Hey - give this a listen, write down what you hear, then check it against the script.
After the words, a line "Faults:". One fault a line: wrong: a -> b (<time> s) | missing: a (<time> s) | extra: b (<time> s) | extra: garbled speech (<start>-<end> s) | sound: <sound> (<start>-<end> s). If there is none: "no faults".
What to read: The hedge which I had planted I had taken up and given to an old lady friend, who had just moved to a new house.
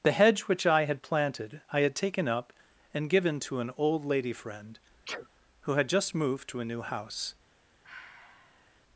The hedge which I had planted I had taken up and given to an old lady friend, who had just moved to a new house.
Faults:
sound: sneeze (5.0-5.3 s)
sound: sigh (7.8-8.8 s)